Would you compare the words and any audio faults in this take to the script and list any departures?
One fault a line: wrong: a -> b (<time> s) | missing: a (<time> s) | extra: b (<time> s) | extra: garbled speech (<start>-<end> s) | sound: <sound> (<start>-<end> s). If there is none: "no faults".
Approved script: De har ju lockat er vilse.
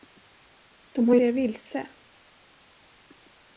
missing: lockat (1.2 s)